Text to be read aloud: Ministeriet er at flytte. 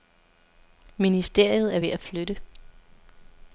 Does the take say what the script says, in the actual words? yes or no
no